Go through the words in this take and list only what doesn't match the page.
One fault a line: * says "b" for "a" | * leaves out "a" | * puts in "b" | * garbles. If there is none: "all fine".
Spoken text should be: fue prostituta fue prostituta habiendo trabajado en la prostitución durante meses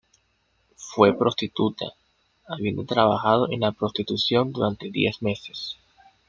* leaves out "fue prostituta"
* puts in "diez"